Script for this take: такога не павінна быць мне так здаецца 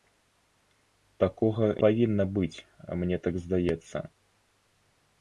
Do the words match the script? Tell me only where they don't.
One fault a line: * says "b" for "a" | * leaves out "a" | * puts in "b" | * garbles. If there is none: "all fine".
* leaves out "не"